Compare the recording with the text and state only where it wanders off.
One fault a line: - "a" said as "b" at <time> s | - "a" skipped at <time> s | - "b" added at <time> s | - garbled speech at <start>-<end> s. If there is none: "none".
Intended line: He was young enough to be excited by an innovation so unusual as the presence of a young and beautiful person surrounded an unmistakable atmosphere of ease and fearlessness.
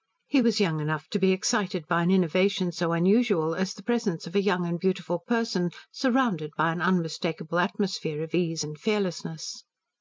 - "by" added at 6.5 s